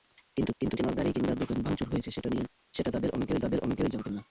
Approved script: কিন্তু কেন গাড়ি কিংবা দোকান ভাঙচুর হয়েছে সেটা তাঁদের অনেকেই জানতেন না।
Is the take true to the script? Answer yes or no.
no